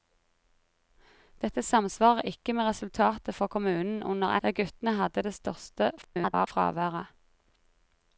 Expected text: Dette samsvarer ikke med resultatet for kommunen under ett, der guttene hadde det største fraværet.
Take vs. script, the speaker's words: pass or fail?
fail